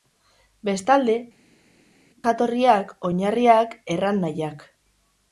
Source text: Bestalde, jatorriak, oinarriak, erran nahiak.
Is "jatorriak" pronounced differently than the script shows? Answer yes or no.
no